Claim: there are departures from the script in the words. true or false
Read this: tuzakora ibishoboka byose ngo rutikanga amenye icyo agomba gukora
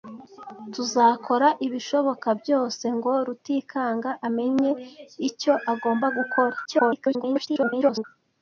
true